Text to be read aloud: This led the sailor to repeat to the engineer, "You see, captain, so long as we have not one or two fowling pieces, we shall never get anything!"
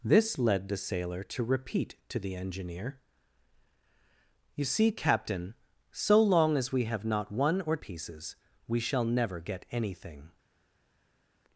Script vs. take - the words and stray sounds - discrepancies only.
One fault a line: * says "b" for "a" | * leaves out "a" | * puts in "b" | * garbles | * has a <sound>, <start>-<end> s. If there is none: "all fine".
* leaves out "two fowling"